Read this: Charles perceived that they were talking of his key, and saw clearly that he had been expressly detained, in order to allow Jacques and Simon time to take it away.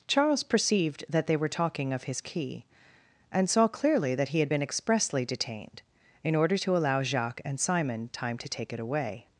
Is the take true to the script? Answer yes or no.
yes